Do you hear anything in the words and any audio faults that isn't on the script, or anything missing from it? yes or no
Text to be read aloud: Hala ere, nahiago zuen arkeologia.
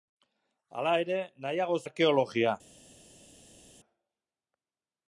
yes